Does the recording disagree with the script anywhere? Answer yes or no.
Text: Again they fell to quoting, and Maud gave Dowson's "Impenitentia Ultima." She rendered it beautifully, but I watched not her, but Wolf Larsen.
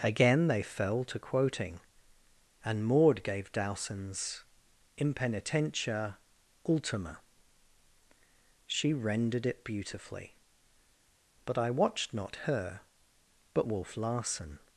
no